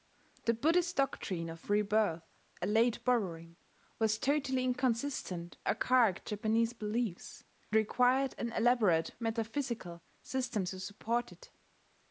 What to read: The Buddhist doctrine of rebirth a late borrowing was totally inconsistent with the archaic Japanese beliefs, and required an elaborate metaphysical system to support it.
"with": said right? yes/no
no